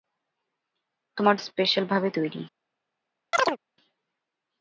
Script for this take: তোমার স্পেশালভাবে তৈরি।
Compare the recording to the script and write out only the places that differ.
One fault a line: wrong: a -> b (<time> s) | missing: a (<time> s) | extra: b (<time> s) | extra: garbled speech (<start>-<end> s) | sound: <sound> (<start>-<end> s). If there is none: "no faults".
sound: chirp (3.3-3.6 s)